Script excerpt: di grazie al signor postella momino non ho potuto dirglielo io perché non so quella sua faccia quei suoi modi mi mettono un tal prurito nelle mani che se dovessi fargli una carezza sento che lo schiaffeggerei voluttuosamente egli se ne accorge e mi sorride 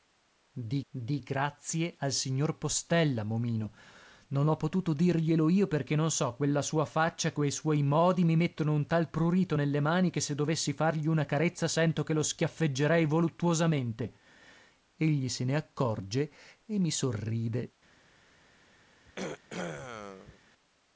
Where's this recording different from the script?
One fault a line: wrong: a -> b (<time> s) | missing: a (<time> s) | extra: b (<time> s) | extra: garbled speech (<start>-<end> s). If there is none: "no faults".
extra: di (0.9 s)